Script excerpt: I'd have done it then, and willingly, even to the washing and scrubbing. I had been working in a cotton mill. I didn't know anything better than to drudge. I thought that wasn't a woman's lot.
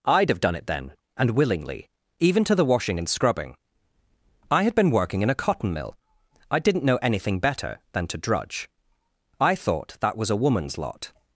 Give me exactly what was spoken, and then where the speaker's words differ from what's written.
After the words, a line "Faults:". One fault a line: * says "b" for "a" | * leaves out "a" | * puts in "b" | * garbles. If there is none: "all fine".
I'd have done it then, and willingly, even to the washing and scrubbing. I had been working in a cotton mill. I didn't know anything better than to drudge. I thought that was a woman's lot.
Faults:
* says "was" for "wasn't"